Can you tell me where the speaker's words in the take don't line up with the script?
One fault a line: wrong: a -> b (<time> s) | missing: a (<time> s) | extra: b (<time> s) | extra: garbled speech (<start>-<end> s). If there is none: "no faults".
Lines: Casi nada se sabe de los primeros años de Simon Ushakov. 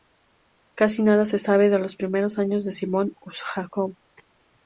no faults